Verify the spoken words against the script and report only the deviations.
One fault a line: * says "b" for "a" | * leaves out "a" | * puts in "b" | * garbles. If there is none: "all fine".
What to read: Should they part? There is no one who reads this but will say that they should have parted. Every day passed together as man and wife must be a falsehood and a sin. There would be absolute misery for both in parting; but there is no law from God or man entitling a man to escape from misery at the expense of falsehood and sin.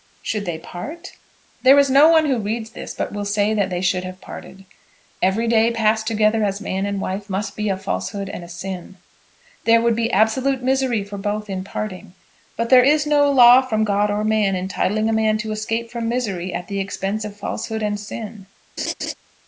all fine